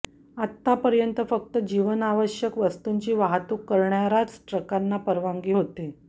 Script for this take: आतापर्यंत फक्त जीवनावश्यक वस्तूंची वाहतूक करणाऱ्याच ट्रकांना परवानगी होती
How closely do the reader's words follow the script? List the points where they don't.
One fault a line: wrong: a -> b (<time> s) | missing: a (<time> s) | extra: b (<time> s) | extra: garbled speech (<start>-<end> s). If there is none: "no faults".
no faults